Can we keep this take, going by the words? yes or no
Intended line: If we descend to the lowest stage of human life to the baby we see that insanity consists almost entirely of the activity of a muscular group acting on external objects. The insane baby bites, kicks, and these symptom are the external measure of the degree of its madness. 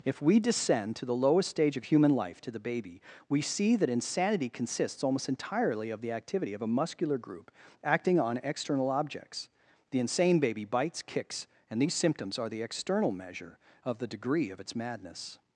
no